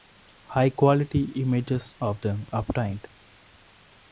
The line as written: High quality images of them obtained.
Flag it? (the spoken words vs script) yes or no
no